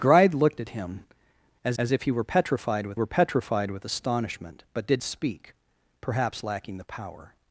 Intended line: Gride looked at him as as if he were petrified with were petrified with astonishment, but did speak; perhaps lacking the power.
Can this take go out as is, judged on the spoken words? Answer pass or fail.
pass